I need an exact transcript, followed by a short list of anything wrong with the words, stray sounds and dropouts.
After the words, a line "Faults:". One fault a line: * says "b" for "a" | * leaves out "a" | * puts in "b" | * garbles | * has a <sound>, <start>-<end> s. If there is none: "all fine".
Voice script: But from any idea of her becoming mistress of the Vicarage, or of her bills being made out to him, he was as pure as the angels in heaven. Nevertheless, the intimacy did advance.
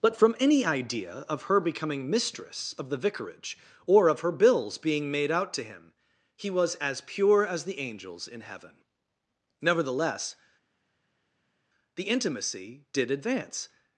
But from any idea of her becoming mistress of the Vicarage, or of her bills being made out to him, he was as pure as the angels in heaven. Nevertheless, the intimacy did advance.
Faults:
all fine